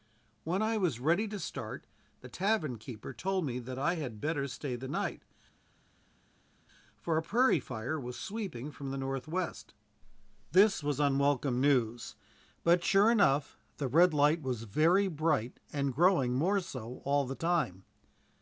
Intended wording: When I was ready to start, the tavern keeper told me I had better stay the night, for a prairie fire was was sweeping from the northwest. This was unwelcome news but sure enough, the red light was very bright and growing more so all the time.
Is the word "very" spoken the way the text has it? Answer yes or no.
yes